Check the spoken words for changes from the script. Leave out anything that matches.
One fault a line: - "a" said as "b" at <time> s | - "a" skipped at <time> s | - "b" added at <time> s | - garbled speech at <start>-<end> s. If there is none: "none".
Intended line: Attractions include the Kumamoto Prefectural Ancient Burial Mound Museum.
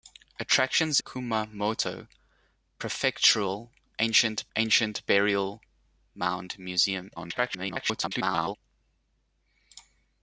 - "include the" skipped at 1.0 s
- "Ancient" added at 4.6 s
- garbled speech at 7.2-8.6 s